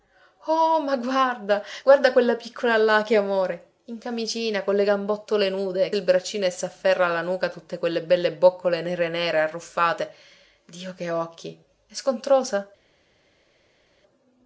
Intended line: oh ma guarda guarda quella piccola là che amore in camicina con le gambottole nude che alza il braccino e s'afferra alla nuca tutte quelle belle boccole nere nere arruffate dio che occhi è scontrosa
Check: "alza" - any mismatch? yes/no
yes